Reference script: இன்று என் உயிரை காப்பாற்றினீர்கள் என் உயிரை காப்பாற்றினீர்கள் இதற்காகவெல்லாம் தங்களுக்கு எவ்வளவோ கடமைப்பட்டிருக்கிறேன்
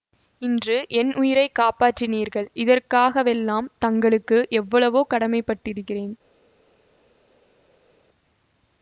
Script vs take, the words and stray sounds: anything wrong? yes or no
yes